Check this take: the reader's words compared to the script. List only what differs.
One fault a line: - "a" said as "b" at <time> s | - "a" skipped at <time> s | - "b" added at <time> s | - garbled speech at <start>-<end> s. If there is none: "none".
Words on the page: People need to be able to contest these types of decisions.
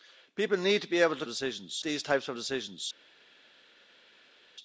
- "contest" said as "decisions" at 1.3 s